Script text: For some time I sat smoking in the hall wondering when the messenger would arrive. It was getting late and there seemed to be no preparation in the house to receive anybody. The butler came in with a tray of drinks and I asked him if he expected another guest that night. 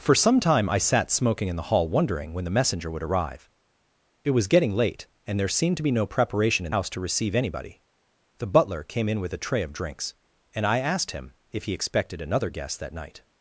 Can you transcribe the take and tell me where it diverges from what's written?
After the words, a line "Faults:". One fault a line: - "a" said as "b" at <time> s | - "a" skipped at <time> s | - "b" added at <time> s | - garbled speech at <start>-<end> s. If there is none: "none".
For some time I sat smoking in the hall wondering when the messenger would arrive. It was getting late and there seemed to be no preparation in house to receive anybody. The butler came in with a tray of drinks and I asked him if he expected another guest that night.
Faults:
- "the" skipped at 6.7 s